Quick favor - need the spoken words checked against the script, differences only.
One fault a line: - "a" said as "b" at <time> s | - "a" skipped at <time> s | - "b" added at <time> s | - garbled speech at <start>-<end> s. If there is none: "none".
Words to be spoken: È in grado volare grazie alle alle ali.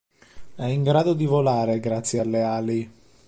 - "di" added at 1.1 s
- "alle" skipped at 2.4 s